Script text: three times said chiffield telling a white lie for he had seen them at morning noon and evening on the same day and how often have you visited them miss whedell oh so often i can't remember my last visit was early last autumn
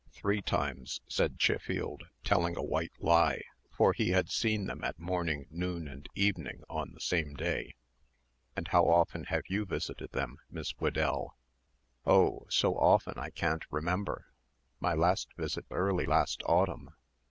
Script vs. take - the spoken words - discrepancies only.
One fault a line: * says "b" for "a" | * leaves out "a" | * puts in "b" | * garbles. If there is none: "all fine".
* leaves out "was"